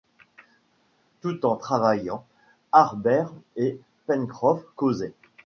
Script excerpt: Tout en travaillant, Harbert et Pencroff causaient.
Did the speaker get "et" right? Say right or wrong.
right